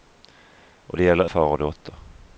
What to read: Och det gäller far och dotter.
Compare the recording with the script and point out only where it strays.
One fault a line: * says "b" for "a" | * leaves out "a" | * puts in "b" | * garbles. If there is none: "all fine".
all fine